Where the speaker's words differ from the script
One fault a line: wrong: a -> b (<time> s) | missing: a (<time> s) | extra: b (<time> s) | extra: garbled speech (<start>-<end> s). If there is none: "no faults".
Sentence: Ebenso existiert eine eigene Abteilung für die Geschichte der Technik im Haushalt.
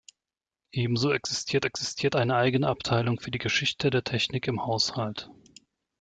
extra: existiert (1.6 s)